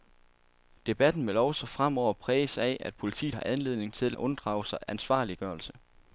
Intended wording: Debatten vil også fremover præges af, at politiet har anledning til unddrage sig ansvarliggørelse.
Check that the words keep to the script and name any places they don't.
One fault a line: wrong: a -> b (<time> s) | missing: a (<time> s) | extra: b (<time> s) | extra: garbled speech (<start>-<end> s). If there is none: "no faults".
no faults